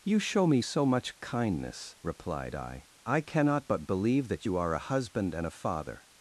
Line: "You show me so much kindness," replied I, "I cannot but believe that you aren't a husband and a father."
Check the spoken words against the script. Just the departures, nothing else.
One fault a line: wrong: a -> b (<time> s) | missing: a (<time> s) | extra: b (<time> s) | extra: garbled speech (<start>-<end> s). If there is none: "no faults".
wrong: aren't -> are (4.6 s)